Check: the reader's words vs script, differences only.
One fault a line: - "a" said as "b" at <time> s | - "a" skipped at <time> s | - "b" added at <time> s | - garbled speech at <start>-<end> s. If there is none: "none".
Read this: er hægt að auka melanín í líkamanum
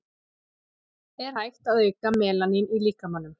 none